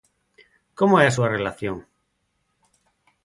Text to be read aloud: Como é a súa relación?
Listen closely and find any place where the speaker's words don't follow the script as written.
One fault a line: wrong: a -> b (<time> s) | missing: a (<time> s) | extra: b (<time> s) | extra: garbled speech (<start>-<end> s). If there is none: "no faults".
no faults